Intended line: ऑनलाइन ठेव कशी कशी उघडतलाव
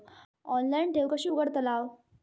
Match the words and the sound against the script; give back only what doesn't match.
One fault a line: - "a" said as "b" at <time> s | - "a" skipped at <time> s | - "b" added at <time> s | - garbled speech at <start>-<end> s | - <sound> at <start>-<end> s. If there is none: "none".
- "कशी" skipped at 1.3 s